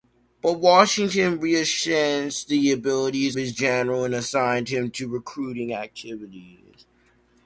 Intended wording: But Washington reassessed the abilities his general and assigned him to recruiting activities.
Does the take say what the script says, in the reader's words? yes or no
yes